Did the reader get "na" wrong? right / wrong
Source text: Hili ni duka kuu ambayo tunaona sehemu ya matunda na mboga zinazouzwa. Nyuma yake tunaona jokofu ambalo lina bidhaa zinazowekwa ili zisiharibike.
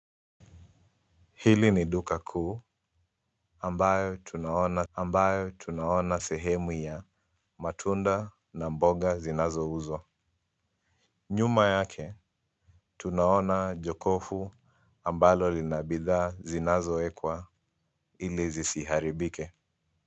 right